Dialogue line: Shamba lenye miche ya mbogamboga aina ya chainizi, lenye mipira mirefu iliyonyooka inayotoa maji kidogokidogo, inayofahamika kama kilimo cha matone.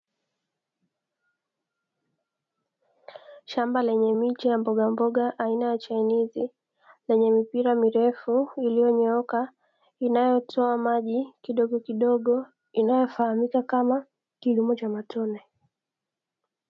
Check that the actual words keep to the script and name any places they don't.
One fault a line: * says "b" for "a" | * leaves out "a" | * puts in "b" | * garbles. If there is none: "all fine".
all fine